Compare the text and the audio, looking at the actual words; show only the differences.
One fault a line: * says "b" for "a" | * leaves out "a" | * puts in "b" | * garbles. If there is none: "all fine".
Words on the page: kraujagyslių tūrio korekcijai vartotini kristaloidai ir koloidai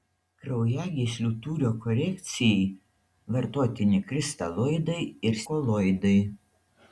all fine